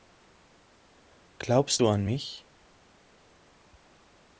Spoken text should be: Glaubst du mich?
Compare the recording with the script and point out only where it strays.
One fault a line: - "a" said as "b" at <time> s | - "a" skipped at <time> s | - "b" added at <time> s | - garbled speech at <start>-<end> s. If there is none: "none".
- "an" added at 1.9 s